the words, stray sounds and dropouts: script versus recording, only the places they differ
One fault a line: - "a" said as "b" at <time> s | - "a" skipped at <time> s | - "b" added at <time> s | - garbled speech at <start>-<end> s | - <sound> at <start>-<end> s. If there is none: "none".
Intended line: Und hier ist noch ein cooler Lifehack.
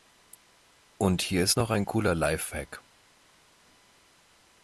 none